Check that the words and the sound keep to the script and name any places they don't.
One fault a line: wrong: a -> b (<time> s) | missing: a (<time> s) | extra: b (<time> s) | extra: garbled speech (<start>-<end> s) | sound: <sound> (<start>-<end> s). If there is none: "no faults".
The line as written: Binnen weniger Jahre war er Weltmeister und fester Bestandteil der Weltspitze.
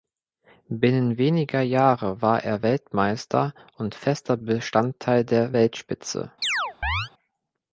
sound: chirp (6.4-7.1 s)